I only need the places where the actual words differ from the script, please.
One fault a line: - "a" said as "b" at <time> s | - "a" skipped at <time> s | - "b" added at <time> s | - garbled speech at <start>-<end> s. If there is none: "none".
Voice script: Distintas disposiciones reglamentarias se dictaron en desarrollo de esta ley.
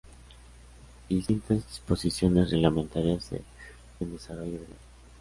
- "dictaron" skipped at 3.4 s
- "esta" skipped at 4.6 s